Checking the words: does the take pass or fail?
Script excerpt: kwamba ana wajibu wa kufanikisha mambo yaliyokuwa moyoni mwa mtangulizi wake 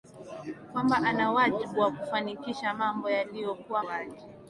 fail